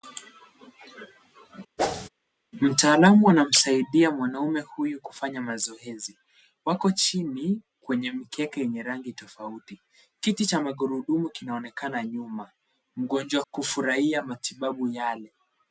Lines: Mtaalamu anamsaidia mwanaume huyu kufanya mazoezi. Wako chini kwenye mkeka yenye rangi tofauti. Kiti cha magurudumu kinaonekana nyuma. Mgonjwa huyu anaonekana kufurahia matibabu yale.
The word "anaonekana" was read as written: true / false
false